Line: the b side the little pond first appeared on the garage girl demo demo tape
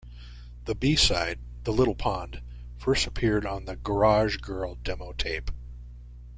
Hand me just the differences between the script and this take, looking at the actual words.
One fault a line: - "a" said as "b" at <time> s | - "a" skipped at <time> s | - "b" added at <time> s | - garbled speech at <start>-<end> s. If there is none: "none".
- "demo" skipped at 5.1 s